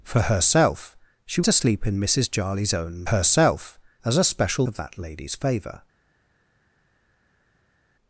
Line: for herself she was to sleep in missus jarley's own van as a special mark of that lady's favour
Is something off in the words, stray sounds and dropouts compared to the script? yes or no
yes